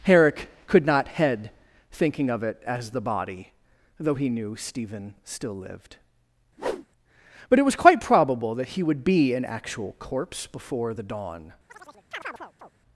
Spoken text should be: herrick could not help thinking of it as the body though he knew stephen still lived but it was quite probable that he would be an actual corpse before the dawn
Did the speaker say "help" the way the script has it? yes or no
no